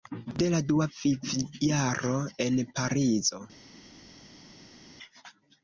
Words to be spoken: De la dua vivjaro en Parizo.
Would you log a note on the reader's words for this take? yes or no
no